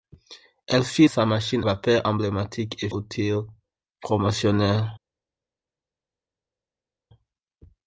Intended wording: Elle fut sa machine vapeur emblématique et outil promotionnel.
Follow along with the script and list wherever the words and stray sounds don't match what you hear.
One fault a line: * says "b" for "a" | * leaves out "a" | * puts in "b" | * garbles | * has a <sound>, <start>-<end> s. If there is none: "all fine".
all fine